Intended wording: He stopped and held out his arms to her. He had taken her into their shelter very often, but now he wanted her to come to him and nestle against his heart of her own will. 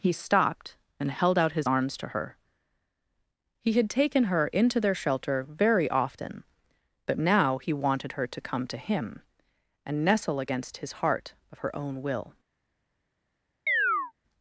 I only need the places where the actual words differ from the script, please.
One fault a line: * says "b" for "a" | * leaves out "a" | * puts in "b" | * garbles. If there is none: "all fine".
all fine